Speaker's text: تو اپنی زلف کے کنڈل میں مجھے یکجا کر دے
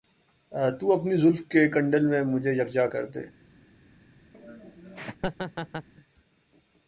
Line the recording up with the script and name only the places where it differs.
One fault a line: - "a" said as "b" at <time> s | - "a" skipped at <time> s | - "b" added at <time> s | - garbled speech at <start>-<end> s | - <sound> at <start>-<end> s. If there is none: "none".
- laugh at 4.3-5.9 s